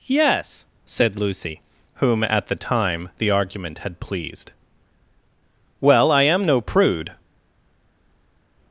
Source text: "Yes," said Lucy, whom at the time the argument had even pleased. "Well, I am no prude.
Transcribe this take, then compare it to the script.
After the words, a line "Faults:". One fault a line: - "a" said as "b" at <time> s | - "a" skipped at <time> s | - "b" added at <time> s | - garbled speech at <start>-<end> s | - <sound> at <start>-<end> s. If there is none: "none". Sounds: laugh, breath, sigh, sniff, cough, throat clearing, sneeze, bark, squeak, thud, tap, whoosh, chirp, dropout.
"Yes," said Lucy, whom at the time the argument had pleased. "Well, I am no prude.
Faults:
- "even" skipped at 4.0 s